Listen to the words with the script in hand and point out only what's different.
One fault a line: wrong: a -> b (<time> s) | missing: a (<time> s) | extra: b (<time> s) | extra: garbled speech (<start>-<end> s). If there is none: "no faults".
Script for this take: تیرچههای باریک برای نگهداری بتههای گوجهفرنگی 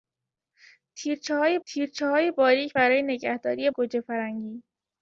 extra: تیرچههای (1.7 s)
missing: بتههای (3.7 s)